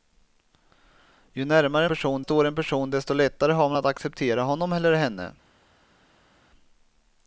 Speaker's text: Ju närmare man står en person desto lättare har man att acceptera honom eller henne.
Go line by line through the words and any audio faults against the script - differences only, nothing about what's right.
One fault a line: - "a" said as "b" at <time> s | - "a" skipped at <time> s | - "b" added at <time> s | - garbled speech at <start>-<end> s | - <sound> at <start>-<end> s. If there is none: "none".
- "man" said as "person" at 1.9 s